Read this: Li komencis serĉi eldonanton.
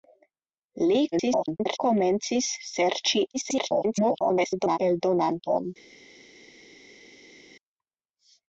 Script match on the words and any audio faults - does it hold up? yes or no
no